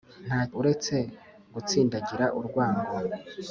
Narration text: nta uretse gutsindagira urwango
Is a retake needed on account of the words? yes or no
no